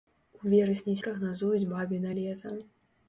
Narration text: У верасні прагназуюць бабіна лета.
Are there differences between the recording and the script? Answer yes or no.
no